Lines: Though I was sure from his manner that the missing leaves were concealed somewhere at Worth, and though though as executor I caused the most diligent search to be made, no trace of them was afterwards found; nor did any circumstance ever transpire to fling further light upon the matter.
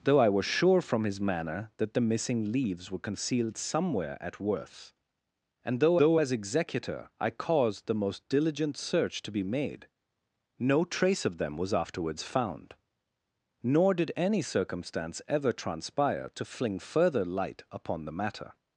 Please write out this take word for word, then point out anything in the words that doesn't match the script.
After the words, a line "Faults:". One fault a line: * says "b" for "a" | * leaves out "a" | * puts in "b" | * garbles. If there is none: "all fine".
Though I was sure from his manner that the missing leaves were concealed somewhere at Worth, and though though as executor I caused the most diligent search to be made, no trace of them was afterwards found; nor did any circumstance ever transpire to fling further light upon the matter.
Faults:
all fine